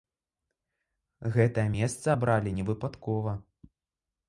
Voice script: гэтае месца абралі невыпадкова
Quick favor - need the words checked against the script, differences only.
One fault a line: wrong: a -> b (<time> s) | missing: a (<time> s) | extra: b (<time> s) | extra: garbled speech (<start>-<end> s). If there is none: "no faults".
no faults